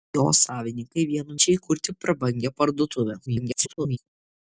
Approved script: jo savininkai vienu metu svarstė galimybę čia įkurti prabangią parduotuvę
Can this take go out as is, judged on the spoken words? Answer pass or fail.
fail